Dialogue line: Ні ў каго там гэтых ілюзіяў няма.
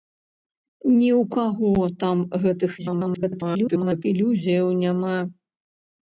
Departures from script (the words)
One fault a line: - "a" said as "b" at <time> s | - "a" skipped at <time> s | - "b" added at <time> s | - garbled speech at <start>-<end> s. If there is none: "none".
- garbled speech at 2.8-4.0 s